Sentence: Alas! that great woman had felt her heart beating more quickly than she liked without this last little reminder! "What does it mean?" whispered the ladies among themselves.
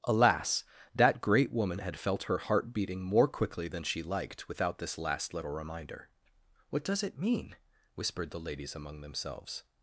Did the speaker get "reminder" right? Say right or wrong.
right